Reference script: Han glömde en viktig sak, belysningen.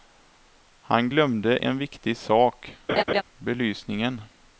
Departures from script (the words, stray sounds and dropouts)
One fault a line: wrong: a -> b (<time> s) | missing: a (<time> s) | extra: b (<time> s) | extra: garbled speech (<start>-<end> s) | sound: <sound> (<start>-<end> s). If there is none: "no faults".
sound: laugh (2.9-3.2 s)